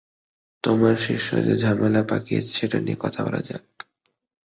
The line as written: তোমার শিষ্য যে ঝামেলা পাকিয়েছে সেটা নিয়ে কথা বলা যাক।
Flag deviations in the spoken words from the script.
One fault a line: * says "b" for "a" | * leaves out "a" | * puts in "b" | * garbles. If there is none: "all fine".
all fine